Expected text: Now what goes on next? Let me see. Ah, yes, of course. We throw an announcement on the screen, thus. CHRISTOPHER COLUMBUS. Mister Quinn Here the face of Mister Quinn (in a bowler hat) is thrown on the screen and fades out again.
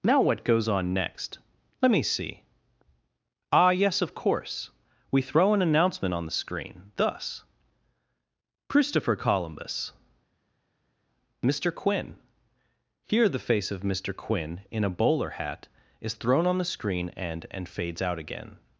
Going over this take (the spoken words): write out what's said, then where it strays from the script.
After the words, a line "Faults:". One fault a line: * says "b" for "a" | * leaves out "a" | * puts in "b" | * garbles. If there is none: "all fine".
Now what goes on next? Let me see. Ah, yes, of course. We throw an announcement on the screen, thus. CHRISTOPHER COLUMBUS. Mister Quinn Here the face of Mister Quinn (in a bowler hat) is thrown on the screen and and fades out again.
Faults:
* puts in "and"